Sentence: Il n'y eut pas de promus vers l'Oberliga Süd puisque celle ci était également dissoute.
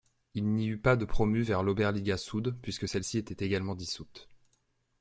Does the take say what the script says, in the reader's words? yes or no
yes